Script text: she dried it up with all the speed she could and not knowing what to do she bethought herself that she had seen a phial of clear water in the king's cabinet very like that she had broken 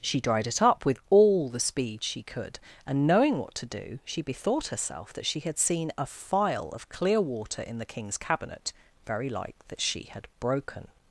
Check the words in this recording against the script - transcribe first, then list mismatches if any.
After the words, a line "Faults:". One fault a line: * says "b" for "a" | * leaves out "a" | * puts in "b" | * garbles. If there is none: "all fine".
she dried it up with all the speed she could and knowing what to do she bethought herself that she had seen a phial of clear water in the king's cabinet very like that she had broken
Faults:
* leaves out "not"